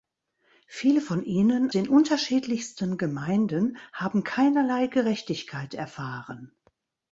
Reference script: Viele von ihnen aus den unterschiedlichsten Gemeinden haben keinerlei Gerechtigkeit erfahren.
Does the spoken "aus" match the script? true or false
false